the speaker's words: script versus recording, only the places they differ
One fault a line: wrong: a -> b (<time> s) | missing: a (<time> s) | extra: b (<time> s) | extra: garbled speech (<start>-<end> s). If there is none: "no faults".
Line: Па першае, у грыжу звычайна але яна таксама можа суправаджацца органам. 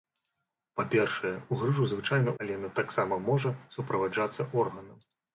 no faults